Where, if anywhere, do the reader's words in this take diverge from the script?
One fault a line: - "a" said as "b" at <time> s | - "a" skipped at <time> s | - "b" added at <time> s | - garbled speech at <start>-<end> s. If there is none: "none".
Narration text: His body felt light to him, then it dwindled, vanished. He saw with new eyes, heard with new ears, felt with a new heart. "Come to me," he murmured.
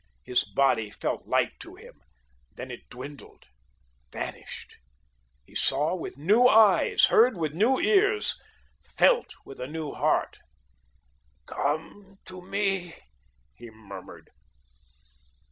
none